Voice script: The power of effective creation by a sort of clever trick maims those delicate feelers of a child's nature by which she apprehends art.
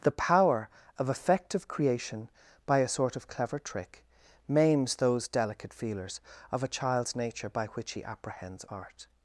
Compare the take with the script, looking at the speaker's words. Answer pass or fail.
fail